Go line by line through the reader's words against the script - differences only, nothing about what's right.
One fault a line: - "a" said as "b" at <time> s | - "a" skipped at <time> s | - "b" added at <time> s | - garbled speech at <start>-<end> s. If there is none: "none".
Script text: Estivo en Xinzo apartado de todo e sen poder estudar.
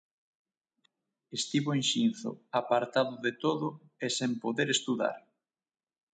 none